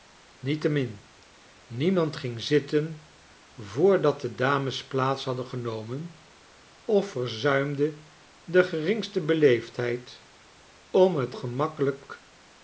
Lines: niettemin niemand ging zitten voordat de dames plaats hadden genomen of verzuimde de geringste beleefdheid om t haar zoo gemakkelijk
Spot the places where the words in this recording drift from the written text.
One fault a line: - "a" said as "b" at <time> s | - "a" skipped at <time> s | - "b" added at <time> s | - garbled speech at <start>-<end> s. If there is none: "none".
- "haar zoo" skipped at 11.3 s